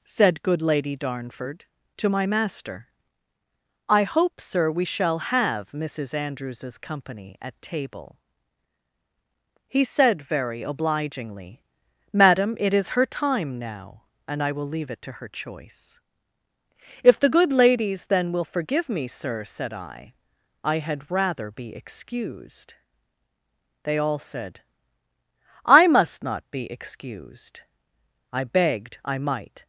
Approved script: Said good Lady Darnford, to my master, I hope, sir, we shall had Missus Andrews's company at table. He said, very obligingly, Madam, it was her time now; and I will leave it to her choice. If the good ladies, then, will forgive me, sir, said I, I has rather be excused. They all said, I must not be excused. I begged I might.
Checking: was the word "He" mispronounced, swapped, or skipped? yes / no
no